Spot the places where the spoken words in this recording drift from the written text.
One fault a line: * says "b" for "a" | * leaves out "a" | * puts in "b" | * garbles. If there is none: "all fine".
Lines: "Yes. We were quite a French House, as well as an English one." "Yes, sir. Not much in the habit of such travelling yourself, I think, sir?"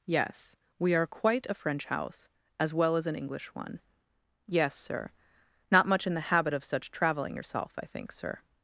* says "are" for "were"